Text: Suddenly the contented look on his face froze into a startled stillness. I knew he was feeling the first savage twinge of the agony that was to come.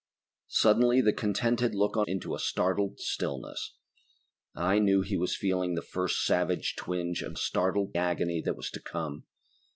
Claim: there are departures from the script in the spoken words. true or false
true